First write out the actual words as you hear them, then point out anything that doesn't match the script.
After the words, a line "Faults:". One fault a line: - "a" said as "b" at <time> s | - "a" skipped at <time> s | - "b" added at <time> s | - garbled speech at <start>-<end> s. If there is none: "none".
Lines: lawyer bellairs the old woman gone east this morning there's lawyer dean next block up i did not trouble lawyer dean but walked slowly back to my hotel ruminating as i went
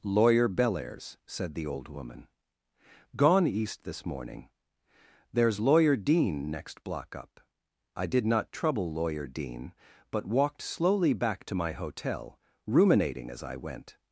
lawyer bellairs said the old woman gone east this morning there's lawyer dean next block up i did not trouble lawyer dean but walked slowly back to my hotel ruminating as i went
Faults:
- "said" added at 1.2 s